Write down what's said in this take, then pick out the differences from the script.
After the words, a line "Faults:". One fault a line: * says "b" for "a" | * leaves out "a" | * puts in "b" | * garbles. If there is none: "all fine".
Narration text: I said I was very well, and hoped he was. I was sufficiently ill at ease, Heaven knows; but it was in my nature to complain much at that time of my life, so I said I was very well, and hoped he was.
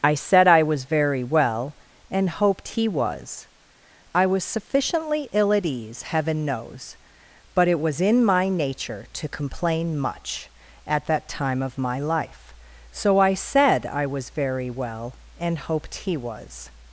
I said I was very well, and hoped he was. I was sufficiently ill at ease, Heaven knows; but it was in my nature to complain much at that time of my life, so I said I was very well, and hoped he was.
Faults:
all fine